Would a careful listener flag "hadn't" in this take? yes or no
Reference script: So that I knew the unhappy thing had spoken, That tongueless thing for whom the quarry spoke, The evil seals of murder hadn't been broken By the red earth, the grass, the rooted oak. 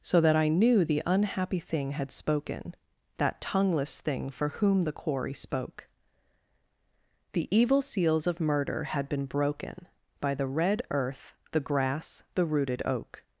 yes